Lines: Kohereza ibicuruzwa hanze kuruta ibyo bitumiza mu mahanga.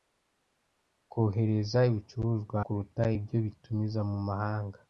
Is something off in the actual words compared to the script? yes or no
yes